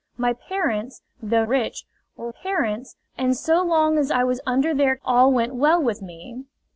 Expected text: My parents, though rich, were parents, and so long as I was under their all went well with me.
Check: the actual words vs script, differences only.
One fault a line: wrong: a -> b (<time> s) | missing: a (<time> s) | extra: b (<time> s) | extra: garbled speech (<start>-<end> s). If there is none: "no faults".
no faults